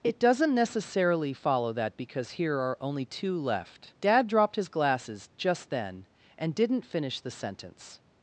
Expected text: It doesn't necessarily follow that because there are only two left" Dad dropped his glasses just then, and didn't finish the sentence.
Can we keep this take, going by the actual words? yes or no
no